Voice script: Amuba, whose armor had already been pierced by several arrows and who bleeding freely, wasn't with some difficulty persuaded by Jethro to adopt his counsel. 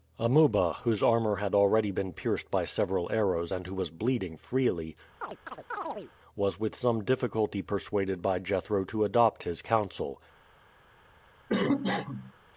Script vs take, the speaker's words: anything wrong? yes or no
yes